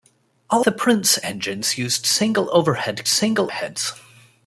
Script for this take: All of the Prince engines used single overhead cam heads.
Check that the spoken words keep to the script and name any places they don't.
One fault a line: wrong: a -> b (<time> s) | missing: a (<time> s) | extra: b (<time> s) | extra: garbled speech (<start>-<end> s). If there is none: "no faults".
missing: of (0.7 s)
wrong: cam -> single (3.1 s)